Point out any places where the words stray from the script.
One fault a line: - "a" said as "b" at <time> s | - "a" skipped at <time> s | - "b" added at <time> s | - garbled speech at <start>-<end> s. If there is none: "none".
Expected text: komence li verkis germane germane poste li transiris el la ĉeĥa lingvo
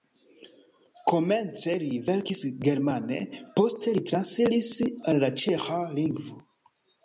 - "germane" skipped at 3.2 s
- "el" said as "al" at 4.9 s